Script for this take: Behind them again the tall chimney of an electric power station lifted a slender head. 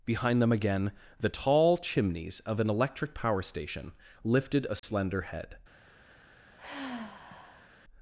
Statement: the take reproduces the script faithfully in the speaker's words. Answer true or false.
false